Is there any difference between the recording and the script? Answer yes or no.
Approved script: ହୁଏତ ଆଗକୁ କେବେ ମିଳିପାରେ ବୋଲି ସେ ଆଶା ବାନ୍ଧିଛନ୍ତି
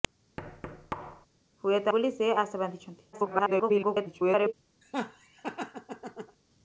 yes